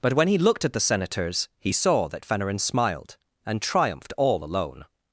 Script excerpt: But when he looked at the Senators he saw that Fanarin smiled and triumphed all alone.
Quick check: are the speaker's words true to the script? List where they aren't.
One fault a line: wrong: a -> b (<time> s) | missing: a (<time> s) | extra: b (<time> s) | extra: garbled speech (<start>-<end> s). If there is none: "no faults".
no faults